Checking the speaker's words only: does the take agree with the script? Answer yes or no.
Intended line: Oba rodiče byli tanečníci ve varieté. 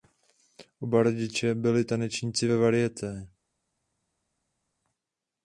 yes